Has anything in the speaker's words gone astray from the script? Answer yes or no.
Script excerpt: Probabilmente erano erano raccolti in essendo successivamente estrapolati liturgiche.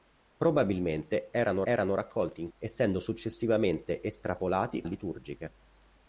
no